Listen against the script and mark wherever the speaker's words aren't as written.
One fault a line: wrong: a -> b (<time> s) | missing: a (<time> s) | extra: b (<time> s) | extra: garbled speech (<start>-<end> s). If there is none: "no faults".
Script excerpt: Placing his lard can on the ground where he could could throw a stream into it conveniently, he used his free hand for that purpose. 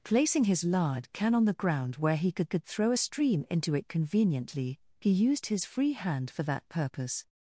no faults